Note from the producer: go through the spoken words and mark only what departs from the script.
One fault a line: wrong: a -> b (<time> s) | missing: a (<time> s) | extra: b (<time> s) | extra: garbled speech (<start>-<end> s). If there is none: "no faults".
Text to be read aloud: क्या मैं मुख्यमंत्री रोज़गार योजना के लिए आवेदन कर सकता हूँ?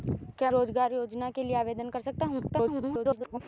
missing: मैं मुख्यमंत्री (0.5 s)
extra: garbled speech (2.5-3.4 s)